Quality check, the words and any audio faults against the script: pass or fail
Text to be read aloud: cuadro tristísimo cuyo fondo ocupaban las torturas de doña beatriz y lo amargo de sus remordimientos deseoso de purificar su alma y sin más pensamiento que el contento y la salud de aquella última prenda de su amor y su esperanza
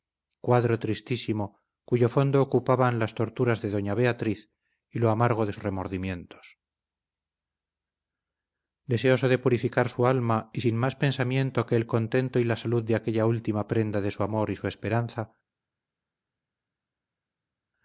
fail